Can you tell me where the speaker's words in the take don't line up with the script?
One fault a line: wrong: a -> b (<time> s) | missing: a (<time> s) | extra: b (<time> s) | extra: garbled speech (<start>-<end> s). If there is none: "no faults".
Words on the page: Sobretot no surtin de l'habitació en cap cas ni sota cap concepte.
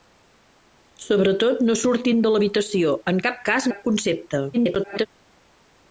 missing: ni sota (3.7 s)
extra: garbled speech (4.5-5.1 s)